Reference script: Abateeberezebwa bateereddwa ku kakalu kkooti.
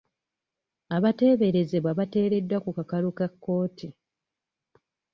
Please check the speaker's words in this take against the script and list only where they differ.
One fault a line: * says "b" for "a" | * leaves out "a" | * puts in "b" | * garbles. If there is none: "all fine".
* puts in "ka"